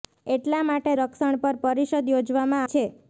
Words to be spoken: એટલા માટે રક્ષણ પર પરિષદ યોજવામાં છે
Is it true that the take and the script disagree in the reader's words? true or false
false